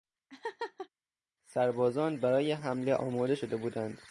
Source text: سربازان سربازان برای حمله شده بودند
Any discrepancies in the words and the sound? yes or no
yes